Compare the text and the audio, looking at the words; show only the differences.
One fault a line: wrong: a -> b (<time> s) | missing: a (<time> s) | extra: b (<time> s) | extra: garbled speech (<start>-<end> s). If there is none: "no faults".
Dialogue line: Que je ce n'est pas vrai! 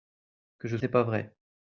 no faults